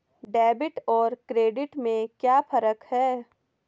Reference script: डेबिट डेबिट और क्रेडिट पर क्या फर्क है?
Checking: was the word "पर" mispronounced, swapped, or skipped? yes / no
yes